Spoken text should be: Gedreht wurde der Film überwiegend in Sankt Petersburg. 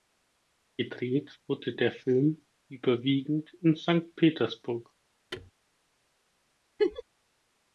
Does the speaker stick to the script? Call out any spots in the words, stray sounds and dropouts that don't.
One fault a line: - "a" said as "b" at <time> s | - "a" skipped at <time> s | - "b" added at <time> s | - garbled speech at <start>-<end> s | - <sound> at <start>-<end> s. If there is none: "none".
- thud at 5.3-5.5 s
- laugh at 6.8-7.0 s